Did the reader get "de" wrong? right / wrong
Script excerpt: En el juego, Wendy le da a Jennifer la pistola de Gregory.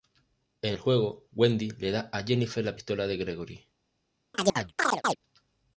right